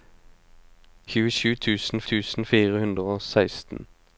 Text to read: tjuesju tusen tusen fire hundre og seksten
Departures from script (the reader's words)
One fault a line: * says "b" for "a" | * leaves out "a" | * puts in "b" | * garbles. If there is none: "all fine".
all fine